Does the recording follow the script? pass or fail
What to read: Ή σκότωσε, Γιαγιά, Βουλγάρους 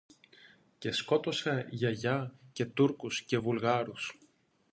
fail